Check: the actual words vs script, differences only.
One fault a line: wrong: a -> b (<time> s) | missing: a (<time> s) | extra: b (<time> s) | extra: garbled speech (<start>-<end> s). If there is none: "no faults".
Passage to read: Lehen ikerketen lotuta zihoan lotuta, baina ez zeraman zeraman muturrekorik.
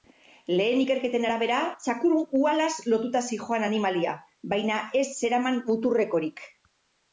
extra: arabera txakur uhalaz (1.3 s)
wrong: lotuta -> animalia (3.7 s)
missing: zeraman (5.6 s)